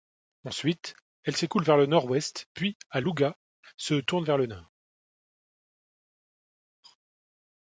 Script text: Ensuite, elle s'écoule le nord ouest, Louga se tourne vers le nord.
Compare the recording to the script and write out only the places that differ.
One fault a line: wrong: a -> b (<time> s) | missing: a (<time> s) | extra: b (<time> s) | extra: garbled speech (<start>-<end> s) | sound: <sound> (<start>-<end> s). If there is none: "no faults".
extra: vers (1.6 s)
extra: puis à (2.5 s)